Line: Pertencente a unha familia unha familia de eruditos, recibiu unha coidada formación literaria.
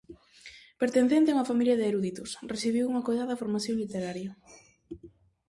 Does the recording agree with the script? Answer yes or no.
no